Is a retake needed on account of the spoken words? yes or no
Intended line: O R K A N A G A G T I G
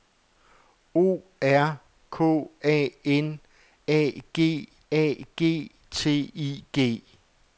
no